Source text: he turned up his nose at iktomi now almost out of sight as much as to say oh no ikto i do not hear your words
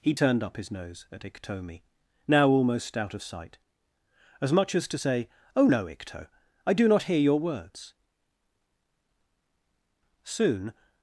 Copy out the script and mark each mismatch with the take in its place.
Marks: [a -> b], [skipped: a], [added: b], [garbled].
he turned up his nose at iktomi now almost out of sight as much as to say oh no ikto i do not hear your words [added: soon]